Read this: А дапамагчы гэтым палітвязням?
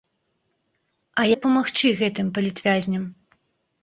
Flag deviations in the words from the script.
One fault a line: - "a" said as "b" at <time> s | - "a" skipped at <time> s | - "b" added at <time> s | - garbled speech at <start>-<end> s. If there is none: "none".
none